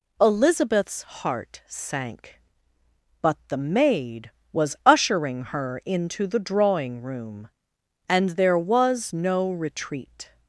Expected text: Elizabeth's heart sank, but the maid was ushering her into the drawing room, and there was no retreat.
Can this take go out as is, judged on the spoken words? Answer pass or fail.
pass